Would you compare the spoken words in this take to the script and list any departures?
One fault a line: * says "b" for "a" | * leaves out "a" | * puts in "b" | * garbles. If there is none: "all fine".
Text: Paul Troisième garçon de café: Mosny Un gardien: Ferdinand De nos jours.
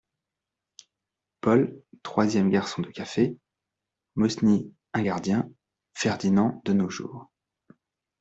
all fine